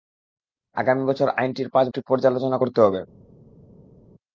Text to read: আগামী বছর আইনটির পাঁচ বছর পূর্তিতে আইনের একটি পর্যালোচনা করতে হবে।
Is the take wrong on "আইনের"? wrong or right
wrong